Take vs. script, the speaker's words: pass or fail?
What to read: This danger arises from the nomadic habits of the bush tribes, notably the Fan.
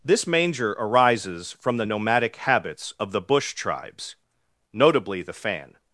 fail